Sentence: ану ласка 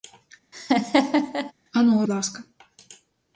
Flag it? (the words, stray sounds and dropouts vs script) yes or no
yes